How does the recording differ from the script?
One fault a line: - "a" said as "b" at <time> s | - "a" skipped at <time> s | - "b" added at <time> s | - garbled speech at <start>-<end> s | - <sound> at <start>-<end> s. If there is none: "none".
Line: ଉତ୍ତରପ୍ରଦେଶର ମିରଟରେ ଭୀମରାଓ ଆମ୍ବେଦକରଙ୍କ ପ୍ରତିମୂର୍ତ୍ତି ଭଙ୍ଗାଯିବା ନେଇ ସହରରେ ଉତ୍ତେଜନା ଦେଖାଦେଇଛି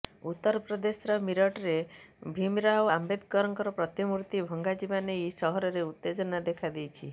none